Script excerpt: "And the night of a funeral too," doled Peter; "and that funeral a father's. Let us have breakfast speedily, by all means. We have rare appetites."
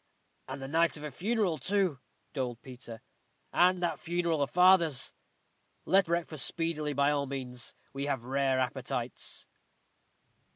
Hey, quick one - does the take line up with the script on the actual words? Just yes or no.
no